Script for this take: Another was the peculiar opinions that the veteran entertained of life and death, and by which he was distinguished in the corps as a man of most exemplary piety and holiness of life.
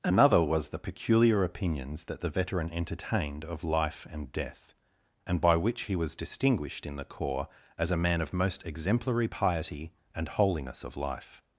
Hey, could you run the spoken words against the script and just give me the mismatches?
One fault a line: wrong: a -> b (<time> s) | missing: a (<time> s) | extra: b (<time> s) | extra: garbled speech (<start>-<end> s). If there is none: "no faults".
no faults